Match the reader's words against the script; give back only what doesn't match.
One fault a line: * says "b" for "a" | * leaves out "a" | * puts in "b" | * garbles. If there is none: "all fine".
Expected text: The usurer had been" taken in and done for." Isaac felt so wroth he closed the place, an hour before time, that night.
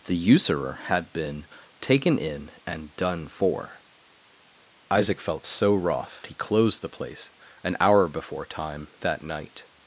all fine